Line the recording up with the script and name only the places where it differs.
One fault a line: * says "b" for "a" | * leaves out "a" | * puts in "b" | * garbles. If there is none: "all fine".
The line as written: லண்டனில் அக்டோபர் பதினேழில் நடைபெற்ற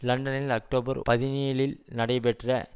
all fine